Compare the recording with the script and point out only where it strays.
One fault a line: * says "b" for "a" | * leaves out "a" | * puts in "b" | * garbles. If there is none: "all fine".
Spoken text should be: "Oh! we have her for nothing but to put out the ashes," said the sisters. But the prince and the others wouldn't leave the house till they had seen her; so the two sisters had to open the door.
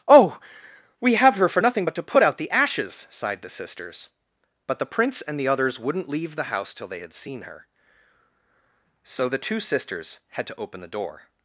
* says "sighed" for "said"